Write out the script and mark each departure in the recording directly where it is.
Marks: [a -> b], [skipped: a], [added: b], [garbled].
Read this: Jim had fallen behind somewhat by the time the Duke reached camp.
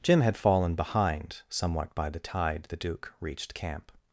Jim had fallen behind somewhat by the [time -> tide] the Duke reached camp.